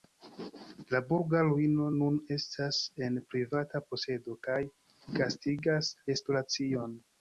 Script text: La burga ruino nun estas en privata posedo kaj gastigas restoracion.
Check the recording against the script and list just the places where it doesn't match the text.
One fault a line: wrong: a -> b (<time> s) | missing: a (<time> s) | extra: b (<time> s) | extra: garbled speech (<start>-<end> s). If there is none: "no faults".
no faults